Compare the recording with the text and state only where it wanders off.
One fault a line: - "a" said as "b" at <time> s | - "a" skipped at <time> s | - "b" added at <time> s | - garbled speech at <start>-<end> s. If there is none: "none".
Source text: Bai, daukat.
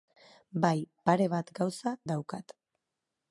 - "pare bat gauza" added at 1.1 s